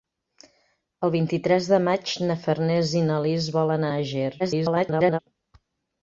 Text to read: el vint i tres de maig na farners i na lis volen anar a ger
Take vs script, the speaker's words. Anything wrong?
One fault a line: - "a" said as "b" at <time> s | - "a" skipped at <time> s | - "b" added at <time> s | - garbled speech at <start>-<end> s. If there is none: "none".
- "anar" skipped at 3.9 s
- garbled speech at 4.4-5.2 s